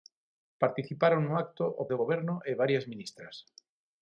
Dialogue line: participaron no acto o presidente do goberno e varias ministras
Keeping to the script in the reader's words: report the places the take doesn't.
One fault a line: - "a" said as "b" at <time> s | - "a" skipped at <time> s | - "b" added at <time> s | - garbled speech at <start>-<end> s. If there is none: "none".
- "presidente" skipped at 1.9 s